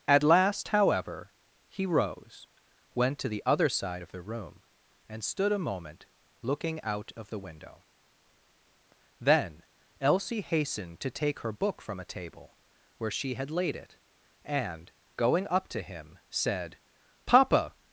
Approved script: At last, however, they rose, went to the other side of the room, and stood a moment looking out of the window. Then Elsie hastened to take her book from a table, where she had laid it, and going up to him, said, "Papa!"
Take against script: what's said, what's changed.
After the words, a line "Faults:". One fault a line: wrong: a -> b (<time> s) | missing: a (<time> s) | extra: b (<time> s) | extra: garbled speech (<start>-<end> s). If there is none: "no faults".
At last, however, he rose, went to the other side of the room, and stood a moment looking out of the window. Then Elsie hastened to take her book from a table, where she had laid it, and going up to him, said, "Papa!"
Faults:
wrong: they -> he (1.7 s)